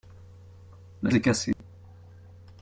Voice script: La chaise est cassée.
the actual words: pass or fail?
fail